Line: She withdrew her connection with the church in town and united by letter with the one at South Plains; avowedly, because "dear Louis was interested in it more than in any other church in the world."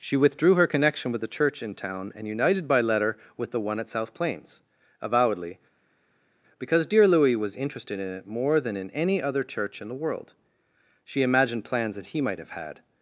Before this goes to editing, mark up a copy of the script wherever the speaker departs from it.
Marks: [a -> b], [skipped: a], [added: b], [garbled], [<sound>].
She withdrew her connection with the church in town and united by letter with the one at South Plains; avowedly, because "dear Louis was interested in it more than in any other church in the world." [added: She imagined plans that he might have had]